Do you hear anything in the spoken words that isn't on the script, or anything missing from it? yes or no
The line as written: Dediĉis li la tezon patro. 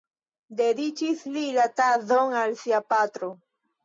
yes